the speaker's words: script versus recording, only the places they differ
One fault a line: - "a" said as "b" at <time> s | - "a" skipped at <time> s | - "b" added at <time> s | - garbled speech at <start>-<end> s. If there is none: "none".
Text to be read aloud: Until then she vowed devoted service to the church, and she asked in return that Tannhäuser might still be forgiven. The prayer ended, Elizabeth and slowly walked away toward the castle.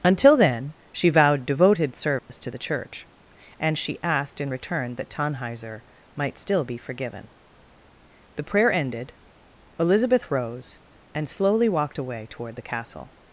- "rose" added at 10.3 s